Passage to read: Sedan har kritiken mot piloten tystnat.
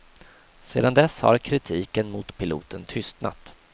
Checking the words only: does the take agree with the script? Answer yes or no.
no